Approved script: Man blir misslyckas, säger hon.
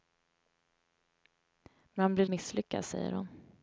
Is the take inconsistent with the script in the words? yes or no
no